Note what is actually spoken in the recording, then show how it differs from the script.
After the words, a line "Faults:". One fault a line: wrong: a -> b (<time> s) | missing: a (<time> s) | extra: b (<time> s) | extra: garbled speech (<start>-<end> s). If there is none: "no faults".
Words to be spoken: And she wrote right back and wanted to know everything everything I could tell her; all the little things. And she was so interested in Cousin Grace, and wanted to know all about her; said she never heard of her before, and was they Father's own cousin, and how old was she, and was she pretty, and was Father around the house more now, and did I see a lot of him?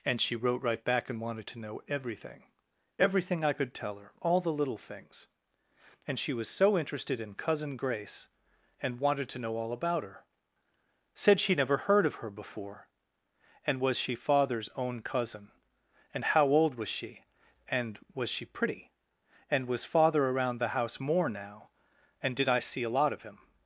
And she wrote right back and wanted to know everything everything I could tell her; all the little things. And she was so interested in Cousin Grace, and wanted to know all about her; said she never heard of her before, and was she Father's own cousin, and how old was she, and was she pretty, and was Father around the house more now, and did I see a lot of him?
Faults:
wrong: they -> she (14.0 s)